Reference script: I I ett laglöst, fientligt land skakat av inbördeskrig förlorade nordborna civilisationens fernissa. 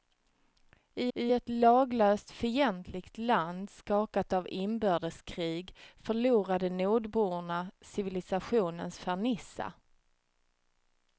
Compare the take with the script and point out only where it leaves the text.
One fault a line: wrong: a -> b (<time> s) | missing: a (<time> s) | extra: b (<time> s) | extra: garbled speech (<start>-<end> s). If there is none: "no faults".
no faults